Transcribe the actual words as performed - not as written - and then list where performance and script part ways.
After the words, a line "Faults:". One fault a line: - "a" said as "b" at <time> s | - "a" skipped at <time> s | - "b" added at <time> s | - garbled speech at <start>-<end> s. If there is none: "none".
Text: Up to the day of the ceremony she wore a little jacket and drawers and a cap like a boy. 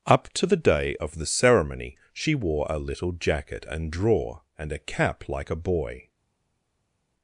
Up to the day of the ceremony she wore a little jacket and drawer and a cap like a boy.
Faults:
- "drawers" said as "drawer" at 3.9 s